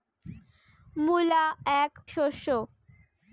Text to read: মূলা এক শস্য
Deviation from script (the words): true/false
false